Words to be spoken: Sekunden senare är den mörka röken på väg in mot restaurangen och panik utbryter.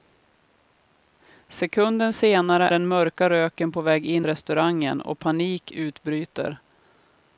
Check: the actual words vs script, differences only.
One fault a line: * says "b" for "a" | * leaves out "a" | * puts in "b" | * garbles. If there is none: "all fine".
* leaves out "är"
* leaves out "mot"